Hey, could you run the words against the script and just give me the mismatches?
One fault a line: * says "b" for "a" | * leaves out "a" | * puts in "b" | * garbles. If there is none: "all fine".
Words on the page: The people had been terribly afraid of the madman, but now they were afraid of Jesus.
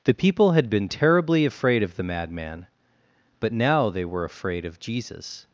all fine